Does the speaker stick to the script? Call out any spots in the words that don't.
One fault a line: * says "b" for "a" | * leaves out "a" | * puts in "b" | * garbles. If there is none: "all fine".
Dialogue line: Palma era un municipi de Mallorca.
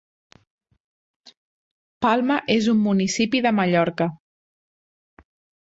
* says "és" for "era"